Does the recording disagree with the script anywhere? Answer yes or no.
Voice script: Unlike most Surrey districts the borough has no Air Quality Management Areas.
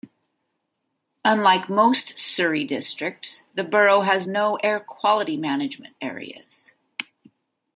no